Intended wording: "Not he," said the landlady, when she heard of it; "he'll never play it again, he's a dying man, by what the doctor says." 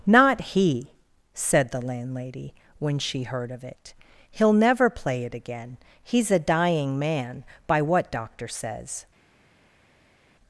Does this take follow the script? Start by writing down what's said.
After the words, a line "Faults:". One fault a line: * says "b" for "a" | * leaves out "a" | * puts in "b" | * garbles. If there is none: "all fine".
"Not he," said the landlady, when she heard of it; "he'll never play it again, he's a dying man, by what doctor says."
Faults:
* leaves out "the"